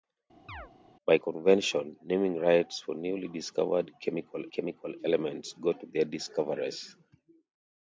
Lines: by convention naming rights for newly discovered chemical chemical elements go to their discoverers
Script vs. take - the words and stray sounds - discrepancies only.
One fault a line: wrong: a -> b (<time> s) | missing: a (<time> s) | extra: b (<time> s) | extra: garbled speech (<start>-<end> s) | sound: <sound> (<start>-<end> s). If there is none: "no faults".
sound: chirp (0.5-0.7 s)